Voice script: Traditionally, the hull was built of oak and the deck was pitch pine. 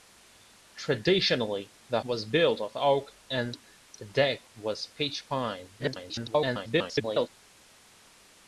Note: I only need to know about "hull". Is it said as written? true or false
false